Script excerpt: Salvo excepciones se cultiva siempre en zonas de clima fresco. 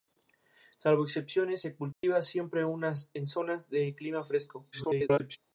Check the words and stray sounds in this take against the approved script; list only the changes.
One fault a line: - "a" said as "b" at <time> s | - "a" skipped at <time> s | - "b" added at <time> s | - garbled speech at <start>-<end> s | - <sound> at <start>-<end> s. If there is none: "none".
- dropout at 1.9-2.0 s
- garbled speech at 4.7-5.4 s